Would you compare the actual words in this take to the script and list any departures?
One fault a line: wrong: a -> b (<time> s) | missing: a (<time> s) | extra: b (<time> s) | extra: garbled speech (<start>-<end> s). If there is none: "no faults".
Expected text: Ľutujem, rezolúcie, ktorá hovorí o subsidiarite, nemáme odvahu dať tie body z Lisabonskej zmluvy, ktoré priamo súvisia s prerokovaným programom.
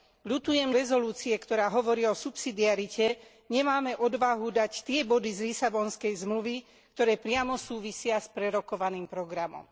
no faults